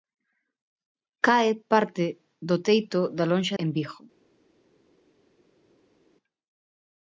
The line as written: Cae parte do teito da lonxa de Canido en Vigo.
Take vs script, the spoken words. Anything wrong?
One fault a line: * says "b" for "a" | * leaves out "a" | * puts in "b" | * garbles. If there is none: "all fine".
* leaves out "de Canido"